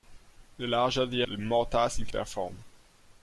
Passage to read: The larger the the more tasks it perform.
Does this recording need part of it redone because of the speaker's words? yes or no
no